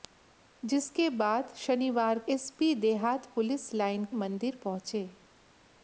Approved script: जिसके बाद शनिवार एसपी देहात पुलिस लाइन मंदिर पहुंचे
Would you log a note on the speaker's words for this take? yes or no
no